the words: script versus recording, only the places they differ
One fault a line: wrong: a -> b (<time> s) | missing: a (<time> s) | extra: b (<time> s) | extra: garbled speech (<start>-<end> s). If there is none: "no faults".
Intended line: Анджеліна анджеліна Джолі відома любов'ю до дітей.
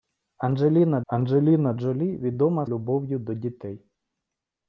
no faults